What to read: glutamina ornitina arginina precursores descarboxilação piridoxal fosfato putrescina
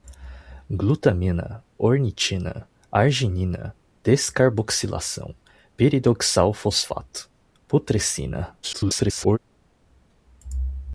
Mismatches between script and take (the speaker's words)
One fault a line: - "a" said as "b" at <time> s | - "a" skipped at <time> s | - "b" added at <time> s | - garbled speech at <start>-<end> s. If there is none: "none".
- "precursores" skipped at 3.8 s
- garbled speech at 8.6-9.4 s